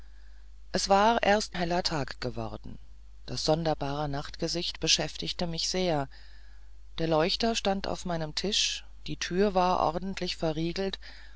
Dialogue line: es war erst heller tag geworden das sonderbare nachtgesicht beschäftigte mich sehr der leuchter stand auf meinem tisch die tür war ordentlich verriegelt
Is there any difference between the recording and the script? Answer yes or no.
no